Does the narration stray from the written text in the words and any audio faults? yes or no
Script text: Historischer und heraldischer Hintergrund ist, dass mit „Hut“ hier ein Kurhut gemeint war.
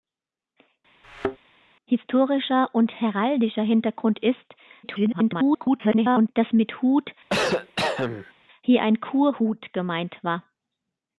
yes